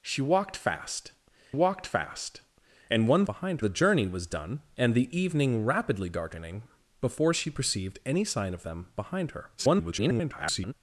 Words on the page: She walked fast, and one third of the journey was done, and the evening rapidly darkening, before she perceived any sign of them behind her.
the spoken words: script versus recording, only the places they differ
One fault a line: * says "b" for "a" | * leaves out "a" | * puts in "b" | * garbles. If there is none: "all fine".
* puts in "walked fast"
* says "behind" for "third"
* garbles